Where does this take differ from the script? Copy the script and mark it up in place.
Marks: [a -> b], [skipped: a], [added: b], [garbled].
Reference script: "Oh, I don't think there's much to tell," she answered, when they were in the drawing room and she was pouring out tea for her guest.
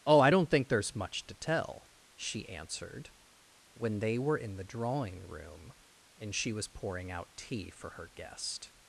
"Oh, I don't think there's much to tell," she answered, when they were in the drawing room and she was pouring out tea for her guest.